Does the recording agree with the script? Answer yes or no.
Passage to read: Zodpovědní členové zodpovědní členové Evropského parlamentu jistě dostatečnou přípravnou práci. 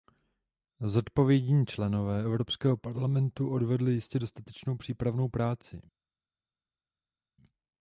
no